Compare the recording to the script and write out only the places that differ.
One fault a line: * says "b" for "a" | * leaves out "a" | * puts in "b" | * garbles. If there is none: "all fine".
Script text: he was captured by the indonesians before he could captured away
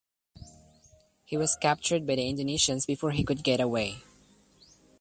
* says "get" for "captured"